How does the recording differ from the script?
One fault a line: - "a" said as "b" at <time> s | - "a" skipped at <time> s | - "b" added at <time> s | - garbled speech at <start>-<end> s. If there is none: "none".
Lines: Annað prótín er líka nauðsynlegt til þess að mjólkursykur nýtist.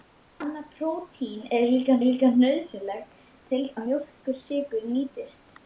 - "líka" added at 2.1 s
- "þess" skipped at 3.6 s